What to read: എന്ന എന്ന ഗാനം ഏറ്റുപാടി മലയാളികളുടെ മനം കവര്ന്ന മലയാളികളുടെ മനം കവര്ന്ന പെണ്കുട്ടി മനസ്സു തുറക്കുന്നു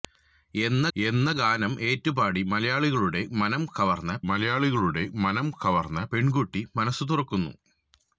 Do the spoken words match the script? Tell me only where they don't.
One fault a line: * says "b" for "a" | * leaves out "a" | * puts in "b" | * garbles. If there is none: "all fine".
all fine